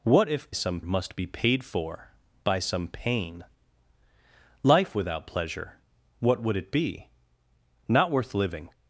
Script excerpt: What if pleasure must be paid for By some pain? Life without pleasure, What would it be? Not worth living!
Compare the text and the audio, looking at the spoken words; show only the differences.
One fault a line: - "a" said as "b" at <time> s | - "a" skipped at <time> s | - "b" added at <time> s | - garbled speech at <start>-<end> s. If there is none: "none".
- "pleasure" said as "some" at 0.5 s